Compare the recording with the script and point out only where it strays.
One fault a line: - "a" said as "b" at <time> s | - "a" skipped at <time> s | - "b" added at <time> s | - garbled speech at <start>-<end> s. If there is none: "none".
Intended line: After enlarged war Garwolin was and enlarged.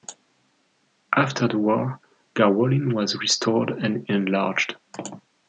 - "enlarged" said as "the" at 1.5 s
- "restored" added at 3.2 s